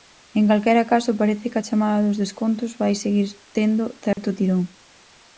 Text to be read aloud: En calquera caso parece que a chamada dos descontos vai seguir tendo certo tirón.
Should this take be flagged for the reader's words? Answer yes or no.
no